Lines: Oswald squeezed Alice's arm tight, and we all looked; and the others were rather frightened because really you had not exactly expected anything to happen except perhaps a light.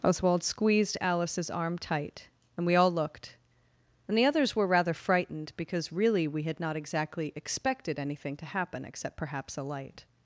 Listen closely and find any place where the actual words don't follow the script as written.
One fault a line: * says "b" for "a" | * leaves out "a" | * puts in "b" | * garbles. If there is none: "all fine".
* says "we" for "you"